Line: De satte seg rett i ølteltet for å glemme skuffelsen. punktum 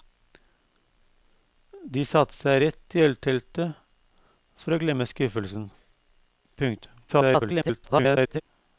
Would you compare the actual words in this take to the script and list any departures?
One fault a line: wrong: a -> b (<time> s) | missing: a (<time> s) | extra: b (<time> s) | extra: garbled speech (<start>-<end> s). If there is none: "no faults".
extra: garbled speech (7.1-8.4 s)